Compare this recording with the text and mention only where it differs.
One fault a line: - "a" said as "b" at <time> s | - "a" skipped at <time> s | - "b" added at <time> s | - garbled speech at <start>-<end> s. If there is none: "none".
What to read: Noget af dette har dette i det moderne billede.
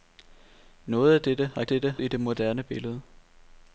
none